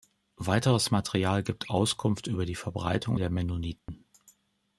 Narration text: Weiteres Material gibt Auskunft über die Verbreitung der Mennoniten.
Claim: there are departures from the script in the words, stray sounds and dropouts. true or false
true